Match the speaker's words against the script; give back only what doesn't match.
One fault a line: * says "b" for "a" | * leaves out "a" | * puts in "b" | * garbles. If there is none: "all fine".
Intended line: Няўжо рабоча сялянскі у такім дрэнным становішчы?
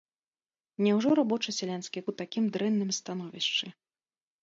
all fine